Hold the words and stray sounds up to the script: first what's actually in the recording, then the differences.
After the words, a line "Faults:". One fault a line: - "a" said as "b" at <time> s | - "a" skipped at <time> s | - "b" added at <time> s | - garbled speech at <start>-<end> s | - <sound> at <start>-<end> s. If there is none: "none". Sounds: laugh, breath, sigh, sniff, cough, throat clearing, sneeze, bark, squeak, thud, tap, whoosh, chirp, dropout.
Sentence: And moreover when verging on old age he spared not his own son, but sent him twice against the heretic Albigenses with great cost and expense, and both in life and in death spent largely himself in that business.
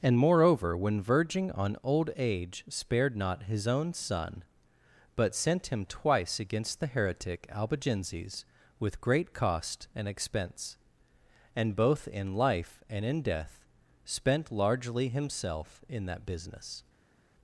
And moreover when verging on old age spared not his own son, but sent him twice against the heretic Albigenses with great cost and expense, and both in life and in death spent largely himself in that business.
Faults:
- "he" skipped at 2.6 s